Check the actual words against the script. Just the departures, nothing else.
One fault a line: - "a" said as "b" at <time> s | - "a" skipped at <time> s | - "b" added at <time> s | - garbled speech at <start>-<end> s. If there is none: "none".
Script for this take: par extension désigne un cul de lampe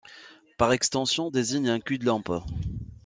none